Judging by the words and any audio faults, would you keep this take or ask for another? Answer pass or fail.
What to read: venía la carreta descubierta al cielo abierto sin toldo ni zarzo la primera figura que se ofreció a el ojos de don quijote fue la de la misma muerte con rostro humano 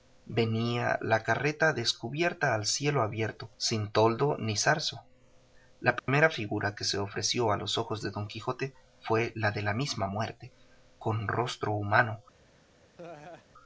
fail